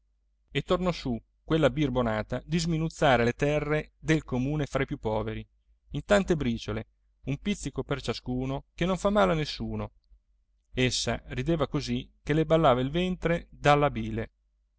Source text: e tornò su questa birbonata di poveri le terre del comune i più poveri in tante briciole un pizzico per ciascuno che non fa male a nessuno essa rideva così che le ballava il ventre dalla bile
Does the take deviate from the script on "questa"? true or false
true